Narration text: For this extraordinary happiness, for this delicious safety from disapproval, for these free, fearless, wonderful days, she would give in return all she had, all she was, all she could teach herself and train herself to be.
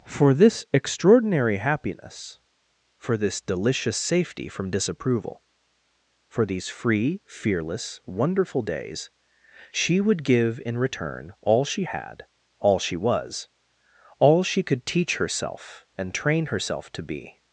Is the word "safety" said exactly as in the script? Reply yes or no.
yes